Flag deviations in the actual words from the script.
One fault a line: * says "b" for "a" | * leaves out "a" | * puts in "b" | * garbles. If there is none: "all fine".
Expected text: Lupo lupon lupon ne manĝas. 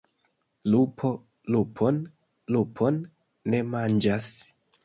all fine